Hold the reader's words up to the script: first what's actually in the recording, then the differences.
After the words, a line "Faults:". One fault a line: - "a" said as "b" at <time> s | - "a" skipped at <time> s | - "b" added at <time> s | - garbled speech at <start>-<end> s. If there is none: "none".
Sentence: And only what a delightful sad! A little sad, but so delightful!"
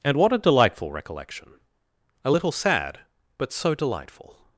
And what a delightful recollection! A little sad, but so delightful!"
Faults:
- "only" skipped at 0.2 s
- "sad" said as "recollection" at 0.9 s